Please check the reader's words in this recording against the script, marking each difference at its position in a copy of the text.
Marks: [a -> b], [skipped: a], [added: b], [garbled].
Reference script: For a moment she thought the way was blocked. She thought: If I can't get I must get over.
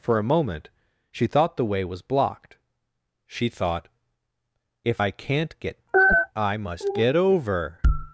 For a moment she thought the way was blocked. She thought: If I can't get I must get over.